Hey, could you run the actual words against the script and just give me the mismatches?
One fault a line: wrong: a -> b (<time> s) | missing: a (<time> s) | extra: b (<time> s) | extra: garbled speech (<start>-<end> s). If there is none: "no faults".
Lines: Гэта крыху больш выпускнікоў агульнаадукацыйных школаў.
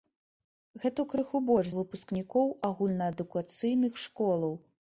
no faults